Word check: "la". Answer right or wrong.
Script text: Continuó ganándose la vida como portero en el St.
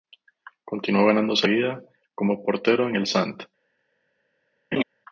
wrong